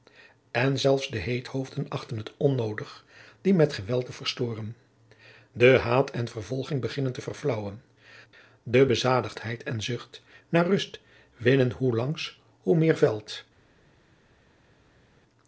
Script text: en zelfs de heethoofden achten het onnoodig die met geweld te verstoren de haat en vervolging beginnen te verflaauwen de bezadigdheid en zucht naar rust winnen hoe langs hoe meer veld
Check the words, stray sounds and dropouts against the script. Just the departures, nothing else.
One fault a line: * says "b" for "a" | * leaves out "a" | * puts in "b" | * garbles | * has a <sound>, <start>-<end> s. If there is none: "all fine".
all fine